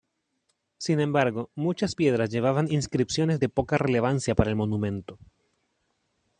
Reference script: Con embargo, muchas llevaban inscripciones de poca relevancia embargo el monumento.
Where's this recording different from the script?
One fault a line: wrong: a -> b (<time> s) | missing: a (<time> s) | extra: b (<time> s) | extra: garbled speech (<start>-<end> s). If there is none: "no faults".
wrong: Con -> Sin (0.8 s)
extra: piedras (1.9 s)
wrong: embargo -> para (4.3 s)